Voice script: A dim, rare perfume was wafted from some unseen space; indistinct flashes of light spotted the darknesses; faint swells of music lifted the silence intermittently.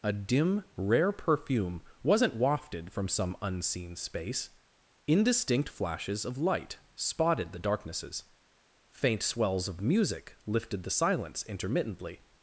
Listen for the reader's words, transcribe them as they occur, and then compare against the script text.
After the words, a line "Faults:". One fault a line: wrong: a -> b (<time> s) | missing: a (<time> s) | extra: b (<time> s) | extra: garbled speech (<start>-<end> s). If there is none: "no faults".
A dim, rare perfume wasn't wafted from some unseen space; indistinct flashes of light spotted the darknesses; faint swells of music lifted the silence intermittently.
Faults:
wrong: was -> wasn't (2.0 s)